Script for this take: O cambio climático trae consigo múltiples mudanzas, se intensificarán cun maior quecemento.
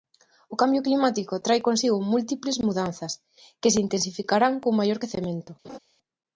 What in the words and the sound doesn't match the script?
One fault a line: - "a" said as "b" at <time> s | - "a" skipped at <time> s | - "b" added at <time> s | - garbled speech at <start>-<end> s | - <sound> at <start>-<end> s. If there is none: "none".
- "que" added at 3.6 s
- laugh at 5.6-5.8 s